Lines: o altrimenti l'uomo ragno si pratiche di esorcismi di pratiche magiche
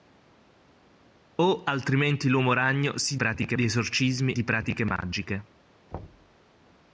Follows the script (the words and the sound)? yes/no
no